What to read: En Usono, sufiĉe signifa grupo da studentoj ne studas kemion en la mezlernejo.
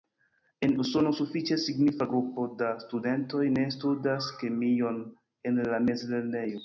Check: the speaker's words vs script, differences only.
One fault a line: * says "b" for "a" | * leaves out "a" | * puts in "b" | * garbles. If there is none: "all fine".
all fine